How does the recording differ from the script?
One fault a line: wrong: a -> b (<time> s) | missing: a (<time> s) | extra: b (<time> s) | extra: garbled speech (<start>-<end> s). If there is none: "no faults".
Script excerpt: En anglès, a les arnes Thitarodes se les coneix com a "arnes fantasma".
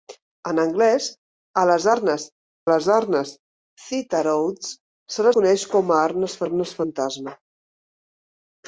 extra: les arnes (2.7 s)
missing: les (5.3 s)
extra: arnes (6.4 s)